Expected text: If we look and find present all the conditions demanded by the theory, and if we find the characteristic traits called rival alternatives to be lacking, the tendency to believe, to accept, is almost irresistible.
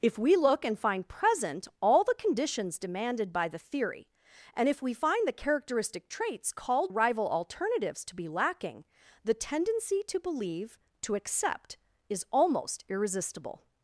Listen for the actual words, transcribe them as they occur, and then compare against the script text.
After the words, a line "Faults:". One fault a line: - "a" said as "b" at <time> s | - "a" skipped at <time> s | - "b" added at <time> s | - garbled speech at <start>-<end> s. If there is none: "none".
If we look and find present all the conditions demanded by the theory, and if we find the characteristic traits called rival alternatives to be lacking, the tendency to believe, to accept, is almost irresistible.
Faults:
none